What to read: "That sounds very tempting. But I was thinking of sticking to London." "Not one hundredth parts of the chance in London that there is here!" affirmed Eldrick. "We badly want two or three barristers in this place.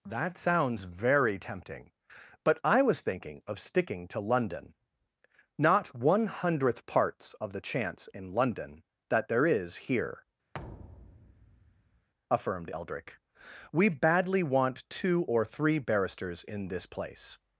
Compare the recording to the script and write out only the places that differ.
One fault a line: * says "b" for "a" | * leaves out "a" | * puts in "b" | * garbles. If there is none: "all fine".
all fine